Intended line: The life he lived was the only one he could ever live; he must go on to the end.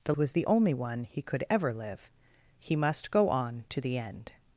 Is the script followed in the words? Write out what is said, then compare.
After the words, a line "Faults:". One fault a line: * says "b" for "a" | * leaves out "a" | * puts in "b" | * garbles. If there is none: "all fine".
The was the only one he could ever live; he must go on to the end.
Faults:
* leaves out "life he lived"